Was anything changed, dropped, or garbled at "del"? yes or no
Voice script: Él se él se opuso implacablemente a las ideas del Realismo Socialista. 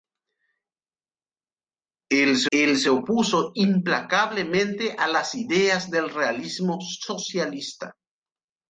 no